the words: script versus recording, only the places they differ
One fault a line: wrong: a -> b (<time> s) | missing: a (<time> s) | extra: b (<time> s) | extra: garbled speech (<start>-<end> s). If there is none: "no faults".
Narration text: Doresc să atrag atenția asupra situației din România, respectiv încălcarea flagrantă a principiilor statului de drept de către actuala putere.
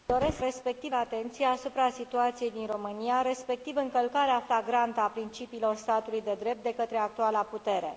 wrong: atrag -> respectiv (0.4 s)